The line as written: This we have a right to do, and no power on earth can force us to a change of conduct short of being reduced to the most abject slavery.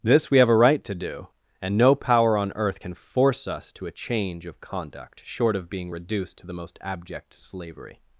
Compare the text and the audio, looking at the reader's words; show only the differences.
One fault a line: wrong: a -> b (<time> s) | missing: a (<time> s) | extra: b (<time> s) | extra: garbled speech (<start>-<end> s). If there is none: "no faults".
no faults